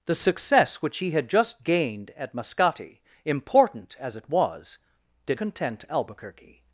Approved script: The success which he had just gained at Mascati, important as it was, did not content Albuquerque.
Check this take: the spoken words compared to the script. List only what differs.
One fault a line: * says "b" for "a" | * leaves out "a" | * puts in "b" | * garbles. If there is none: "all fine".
* leaves out "not"